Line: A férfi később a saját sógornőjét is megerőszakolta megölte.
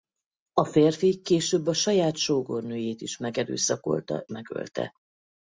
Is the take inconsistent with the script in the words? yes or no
no